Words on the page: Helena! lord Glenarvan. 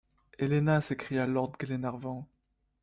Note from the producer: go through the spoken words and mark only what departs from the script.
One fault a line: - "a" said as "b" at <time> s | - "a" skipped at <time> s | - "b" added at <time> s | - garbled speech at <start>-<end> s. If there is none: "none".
- "s'écria" added at 0.8 s